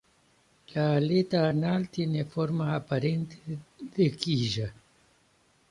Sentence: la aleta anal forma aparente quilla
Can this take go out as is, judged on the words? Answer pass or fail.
fail